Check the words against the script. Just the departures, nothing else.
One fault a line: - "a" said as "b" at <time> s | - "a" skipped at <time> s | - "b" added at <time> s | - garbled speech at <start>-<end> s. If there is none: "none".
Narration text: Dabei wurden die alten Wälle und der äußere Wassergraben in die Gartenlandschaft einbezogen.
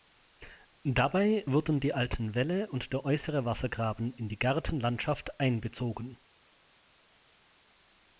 none